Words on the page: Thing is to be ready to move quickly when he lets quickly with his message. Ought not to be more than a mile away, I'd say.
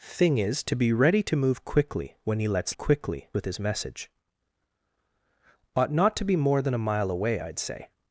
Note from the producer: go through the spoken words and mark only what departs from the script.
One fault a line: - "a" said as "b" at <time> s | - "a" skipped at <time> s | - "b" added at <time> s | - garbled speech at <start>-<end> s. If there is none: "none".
none